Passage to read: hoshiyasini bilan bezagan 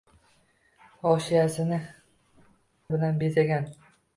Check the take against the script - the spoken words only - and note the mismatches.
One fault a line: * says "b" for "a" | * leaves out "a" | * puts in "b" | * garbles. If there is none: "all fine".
all fine